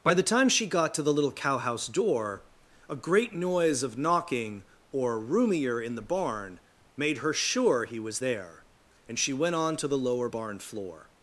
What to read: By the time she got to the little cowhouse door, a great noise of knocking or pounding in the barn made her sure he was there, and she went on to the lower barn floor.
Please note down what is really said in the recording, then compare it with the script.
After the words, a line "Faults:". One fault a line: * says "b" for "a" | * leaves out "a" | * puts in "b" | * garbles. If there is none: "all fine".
By the time she got to the little cowhouse door, a great noise of knocking or roomier in the barn made her sure he was there, and she went on to the lower barn floor.
Faults:
* says "roomier" for "pounding"